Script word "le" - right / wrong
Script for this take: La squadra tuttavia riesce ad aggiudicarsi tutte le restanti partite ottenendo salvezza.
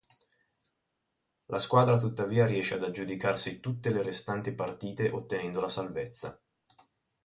right